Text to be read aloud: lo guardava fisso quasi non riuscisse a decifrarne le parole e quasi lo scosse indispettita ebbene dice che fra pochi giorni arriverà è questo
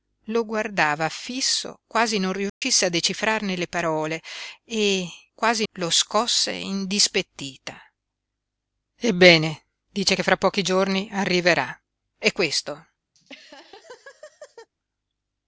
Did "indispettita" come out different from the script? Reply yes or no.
no